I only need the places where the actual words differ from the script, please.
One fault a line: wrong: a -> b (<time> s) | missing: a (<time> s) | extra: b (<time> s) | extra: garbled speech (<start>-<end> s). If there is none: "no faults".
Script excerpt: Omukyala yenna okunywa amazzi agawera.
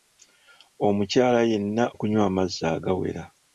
no faults